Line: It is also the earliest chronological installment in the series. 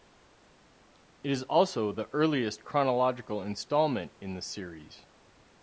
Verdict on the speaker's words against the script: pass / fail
pass